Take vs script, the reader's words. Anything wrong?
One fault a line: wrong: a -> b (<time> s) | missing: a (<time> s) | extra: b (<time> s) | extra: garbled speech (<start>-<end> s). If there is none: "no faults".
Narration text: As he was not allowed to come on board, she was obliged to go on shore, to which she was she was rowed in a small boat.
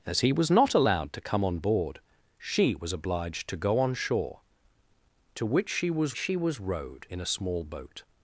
no faults